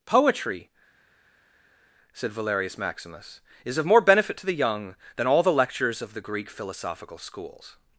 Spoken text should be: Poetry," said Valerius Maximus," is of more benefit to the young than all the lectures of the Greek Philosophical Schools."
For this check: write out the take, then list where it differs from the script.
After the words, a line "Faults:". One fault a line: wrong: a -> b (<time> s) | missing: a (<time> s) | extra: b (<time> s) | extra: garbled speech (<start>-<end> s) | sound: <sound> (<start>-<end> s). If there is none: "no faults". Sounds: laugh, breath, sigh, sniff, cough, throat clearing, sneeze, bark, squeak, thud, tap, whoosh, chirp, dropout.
Poetry," said Valerius Maximus," is of more benefit to the young than all the lectures of the Greek Philosophical Schools."
Faults:
no faults